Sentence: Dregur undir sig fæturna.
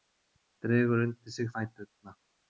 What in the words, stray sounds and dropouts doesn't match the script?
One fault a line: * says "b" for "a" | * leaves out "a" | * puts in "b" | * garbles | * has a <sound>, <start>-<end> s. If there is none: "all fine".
all fine